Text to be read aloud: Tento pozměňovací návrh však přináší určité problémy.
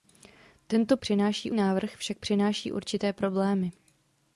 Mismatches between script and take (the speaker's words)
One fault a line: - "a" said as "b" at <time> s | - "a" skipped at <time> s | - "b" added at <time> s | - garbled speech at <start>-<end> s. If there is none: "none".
- "pozměňovací" said as "přináší" at 1.0 s